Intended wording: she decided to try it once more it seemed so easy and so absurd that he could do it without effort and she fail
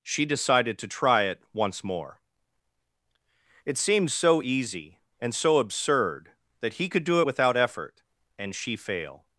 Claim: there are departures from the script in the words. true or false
false